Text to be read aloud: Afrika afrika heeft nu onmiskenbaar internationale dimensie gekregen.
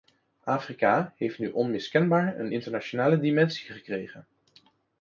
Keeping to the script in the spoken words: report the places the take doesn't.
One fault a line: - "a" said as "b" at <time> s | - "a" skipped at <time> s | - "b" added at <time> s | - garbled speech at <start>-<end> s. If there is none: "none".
- "afrika" skipped at 1.1 s
- "een" added at 2.4 s